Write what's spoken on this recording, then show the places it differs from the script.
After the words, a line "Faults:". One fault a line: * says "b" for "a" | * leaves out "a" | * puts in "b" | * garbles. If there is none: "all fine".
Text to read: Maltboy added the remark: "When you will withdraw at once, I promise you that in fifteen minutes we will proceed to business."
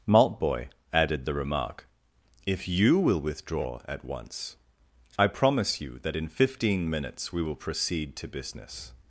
Maltboy added the remark: "If you will withdraw at once, I promise you that in fifteen minutes we will proceed to business."
Faults:
* says "If" for "When"